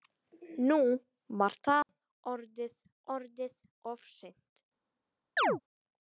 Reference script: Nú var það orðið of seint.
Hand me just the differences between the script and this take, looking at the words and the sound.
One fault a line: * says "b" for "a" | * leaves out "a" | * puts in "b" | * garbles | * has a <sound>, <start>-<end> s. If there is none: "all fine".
* has a dropout, 1.8-1.9 s
* puts in "orðið"
* has a chirp, 5.4-5.6 s